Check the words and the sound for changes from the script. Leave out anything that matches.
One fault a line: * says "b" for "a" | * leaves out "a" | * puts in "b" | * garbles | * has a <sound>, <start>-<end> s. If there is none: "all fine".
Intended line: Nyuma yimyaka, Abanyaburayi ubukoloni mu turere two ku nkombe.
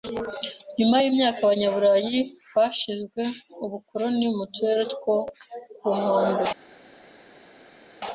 * puts in "bashinze"